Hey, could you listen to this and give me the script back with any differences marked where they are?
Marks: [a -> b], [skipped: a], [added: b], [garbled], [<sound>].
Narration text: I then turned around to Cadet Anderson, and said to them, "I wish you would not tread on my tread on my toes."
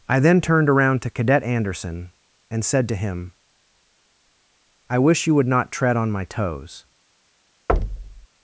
I then turned around to Cadet Anderson, and said to [them, -> him] "I wish you would not tread on my [skipped: tread on my] toes." [thud]